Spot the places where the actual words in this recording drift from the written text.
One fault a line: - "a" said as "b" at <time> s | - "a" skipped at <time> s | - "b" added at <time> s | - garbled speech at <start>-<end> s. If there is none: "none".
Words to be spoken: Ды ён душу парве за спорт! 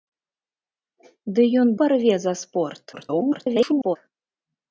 - "душу" skipped at 1.7 s
- garbled speech at 2.9-4.0 s